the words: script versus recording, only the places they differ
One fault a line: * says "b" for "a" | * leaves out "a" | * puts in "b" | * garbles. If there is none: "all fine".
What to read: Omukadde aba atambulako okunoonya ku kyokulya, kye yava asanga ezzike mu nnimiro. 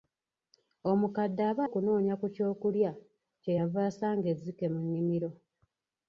* leaves out "atambulako"